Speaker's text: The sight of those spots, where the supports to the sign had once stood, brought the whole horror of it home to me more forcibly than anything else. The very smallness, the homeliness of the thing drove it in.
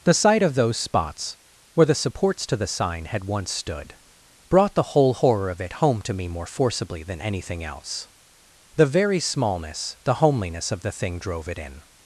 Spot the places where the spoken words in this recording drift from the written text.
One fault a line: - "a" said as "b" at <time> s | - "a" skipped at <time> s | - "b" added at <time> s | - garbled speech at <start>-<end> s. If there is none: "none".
none